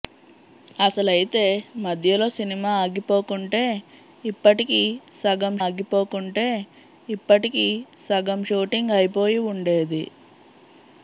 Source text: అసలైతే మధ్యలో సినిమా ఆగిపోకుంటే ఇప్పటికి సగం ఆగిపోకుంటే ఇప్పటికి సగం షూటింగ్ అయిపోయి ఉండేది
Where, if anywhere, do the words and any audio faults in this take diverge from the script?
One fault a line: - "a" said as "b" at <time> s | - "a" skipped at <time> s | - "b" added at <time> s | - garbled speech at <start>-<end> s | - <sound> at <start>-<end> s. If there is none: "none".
none